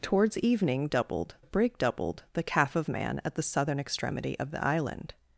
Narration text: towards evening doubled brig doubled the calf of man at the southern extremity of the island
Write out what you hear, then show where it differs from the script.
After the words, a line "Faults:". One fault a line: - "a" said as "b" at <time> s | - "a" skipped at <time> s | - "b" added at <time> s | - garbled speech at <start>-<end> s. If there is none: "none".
towards evening doubled brig doubled the calf of man at the southern extremity of the island
Faults:
none